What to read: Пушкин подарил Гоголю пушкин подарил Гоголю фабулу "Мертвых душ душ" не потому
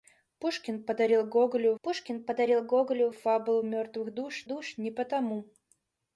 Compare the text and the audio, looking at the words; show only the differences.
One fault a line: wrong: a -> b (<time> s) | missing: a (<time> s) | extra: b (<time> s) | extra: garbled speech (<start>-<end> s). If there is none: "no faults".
no faults